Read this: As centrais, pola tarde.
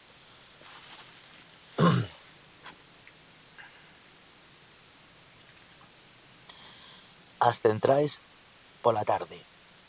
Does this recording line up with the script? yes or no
yes